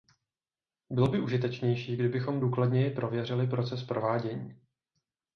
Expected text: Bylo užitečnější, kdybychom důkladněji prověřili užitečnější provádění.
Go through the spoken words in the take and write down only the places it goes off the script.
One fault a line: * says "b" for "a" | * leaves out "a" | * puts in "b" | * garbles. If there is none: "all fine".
* puts in "by"
* says "proces" for "užitečnější"